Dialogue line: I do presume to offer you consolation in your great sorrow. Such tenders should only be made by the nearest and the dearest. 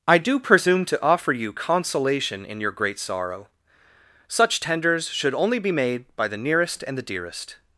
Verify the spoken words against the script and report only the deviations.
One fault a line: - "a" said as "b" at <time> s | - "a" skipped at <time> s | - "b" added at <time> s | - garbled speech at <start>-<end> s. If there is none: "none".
none